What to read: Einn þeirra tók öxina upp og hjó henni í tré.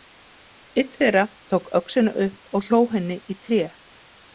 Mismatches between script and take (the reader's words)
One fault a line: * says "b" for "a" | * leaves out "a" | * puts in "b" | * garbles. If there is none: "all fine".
all fine